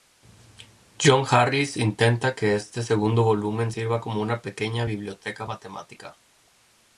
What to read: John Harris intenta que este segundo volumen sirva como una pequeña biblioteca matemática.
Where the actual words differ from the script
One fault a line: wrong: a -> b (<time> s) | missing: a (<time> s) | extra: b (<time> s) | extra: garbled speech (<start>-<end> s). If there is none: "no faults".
no faults